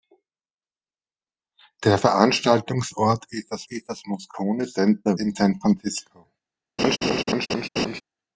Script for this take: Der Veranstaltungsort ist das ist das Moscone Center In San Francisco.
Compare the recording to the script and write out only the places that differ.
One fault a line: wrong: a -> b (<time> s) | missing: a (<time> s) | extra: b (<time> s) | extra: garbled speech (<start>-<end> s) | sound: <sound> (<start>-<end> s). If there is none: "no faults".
sound: laugh (6.8-8.0 s)